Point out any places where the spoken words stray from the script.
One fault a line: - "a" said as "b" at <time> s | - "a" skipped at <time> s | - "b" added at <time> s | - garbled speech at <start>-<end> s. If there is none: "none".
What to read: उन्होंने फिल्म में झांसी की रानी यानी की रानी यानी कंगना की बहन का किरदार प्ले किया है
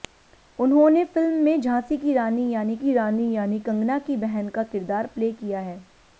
none